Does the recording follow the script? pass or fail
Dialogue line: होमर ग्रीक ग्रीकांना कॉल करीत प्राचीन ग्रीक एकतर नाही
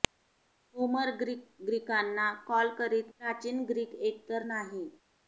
pass